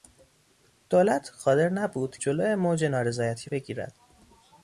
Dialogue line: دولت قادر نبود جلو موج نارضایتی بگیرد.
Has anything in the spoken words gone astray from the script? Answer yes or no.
no